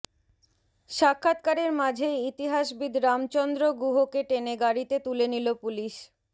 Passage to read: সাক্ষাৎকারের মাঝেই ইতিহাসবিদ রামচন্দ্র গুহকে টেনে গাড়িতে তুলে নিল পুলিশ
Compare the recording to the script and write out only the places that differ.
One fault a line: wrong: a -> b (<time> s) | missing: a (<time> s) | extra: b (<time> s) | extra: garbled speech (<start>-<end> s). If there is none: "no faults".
no faults